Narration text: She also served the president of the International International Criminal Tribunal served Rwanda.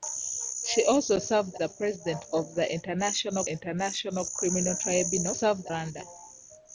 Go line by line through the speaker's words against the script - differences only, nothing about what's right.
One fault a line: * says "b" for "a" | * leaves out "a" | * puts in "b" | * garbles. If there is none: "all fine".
all fine